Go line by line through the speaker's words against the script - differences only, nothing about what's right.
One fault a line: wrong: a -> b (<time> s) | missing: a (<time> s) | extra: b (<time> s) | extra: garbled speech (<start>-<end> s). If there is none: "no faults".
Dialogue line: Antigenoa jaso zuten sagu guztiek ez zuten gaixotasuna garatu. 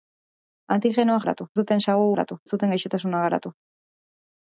wrong: jaso -> garatu (1.2 s)
wrong: guztiek -> garatu (2.1 s)